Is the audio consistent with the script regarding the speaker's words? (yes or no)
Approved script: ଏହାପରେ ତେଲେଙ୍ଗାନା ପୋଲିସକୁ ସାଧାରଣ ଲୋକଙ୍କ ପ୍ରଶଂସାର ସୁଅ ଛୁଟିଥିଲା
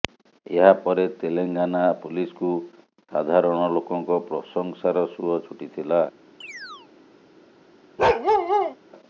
yes